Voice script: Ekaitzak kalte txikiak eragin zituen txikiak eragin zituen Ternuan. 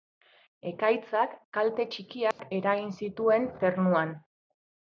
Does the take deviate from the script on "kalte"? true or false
false